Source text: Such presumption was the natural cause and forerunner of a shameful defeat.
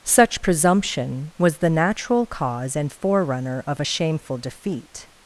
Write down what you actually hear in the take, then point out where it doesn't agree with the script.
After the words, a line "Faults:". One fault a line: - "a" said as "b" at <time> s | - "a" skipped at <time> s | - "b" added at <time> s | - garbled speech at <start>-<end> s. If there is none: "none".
Such presumption was the natural cause and forerunner of a shameful defeat.
Faults:
none